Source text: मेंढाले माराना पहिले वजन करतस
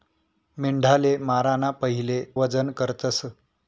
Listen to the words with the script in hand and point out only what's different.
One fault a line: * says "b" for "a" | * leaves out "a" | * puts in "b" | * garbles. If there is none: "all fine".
all fine